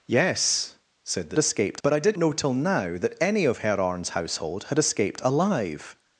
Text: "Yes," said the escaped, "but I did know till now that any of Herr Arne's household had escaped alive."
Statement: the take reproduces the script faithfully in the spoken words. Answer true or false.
true